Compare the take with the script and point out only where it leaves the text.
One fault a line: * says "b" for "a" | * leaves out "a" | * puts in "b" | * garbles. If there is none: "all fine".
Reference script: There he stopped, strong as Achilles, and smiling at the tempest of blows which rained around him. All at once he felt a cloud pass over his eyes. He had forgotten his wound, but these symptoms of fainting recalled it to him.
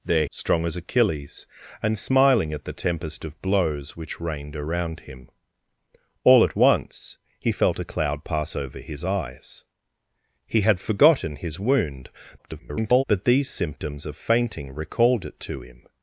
* leaves out "he stopped"
* garbles